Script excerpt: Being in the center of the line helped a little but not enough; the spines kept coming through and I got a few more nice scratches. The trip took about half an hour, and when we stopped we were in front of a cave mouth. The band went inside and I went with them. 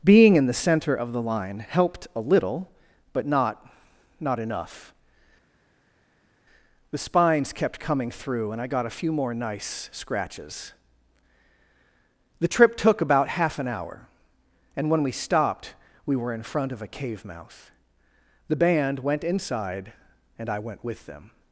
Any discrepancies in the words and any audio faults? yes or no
yes